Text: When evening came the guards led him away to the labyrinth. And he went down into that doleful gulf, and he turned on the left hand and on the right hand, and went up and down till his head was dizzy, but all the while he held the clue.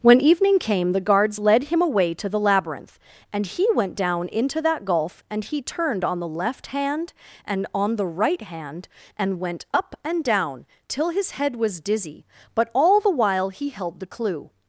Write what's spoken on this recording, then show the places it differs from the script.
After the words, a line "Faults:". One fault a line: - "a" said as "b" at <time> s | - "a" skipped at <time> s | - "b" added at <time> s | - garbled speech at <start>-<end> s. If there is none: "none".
When evening came the guards led him away to the labyrinth. And he went down into that gulf, and he turned on the left hand and on the right hand, and went up and down till his head was dizzy, but all the while he held the clue.
Faults:
- "doleful" skipped at 4.8 s